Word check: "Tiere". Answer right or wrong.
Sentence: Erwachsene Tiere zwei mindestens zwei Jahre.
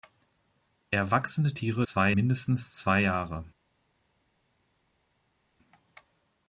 right